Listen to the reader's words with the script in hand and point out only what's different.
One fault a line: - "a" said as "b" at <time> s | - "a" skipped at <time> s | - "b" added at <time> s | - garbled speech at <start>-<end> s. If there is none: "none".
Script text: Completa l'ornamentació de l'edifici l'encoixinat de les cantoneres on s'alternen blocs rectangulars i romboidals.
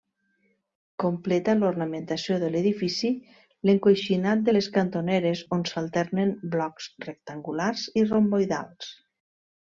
none